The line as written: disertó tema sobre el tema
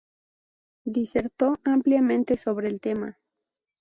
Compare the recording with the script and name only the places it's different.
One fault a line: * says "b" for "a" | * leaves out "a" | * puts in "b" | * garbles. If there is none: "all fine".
* says "ampliamente" for "tema"